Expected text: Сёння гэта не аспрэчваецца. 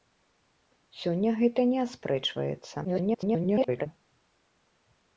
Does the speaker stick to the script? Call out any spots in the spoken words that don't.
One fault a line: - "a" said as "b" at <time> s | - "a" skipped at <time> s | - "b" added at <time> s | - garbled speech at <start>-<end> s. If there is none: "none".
- garbled speech at 2.8-3.9 s